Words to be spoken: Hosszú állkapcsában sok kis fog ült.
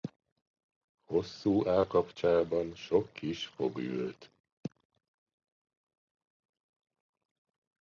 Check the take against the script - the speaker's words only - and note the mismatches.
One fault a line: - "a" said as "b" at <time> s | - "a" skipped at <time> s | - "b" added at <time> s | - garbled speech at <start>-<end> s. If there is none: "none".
none